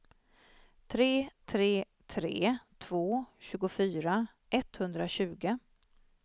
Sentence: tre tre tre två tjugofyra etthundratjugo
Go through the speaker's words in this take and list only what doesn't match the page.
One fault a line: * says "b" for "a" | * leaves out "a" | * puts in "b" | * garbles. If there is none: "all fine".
all fine